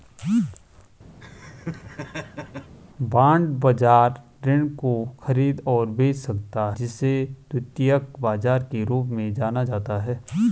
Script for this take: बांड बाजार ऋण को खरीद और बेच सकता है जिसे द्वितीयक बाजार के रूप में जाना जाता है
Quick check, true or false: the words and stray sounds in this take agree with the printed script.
false